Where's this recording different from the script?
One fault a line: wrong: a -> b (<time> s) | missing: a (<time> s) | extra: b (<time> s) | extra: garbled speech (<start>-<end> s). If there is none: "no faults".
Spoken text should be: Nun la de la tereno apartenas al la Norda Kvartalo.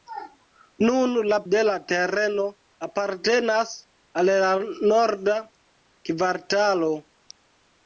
no faults